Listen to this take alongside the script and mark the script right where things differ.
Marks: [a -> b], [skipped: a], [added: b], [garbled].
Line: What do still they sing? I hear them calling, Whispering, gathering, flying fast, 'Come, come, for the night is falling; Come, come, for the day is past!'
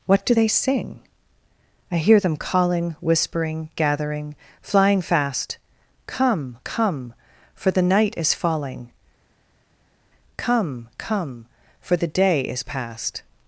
What do [skipped: still] they sing? I hear them calling, Whispering, gathering, flying fast, 'Come, come, for the night is falling; Come, come, for the day is past!'